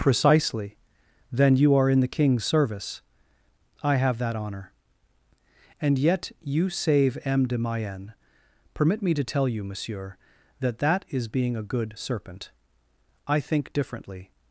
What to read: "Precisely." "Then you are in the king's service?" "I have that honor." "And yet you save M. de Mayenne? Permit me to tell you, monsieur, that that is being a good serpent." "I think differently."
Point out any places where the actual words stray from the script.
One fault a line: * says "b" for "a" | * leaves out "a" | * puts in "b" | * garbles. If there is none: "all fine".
all fine